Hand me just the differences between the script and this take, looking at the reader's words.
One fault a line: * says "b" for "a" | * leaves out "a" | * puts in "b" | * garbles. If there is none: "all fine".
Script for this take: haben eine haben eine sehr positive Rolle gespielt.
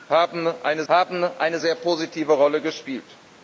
all fine